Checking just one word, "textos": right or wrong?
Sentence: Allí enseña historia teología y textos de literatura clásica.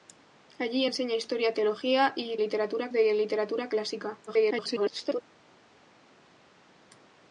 wrong